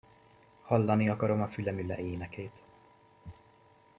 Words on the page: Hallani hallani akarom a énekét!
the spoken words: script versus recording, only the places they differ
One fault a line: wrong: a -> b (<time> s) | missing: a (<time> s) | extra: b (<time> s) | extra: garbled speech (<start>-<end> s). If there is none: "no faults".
missing: hallani (1.1 s)
extra: fülemüle (1.5 s)